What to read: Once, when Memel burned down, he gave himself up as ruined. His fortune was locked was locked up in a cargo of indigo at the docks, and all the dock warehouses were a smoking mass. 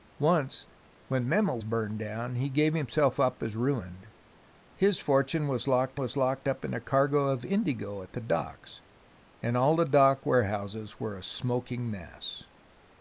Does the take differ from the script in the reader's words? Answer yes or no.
no